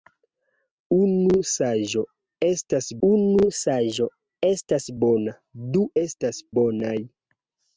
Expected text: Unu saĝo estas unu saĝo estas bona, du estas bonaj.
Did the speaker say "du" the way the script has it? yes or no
yes